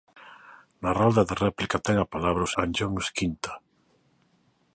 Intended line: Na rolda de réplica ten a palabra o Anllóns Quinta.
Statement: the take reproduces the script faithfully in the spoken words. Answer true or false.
true